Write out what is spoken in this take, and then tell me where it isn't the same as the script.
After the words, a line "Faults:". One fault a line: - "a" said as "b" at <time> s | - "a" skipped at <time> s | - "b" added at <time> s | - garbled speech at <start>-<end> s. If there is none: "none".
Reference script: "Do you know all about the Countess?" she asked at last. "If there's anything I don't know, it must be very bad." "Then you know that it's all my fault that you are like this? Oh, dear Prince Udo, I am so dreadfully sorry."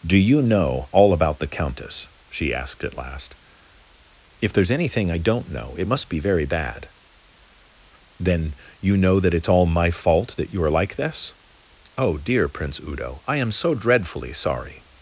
"Do you know all about the Countess?" she asked at last. "If there's anything I don't know, it must be very bad." "Then you know that it's all my fault that you are like this? Oh, dear Prince Udo, I am so dreadfully sorry."
Faults:
none